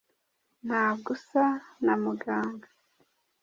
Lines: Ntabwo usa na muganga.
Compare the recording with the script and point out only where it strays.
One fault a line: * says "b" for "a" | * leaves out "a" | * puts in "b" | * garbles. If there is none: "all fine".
all fine